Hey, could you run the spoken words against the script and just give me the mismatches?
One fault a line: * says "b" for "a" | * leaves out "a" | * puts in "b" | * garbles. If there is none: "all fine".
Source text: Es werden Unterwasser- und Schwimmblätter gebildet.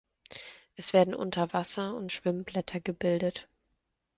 all fine